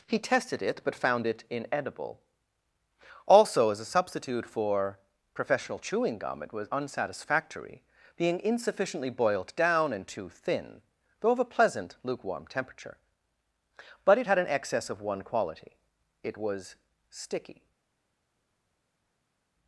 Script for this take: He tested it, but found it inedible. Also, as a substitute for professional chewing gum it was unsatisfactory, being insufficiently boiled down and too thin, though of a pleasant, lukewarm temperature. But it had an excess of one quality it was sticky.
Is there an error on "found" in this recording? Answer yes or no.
no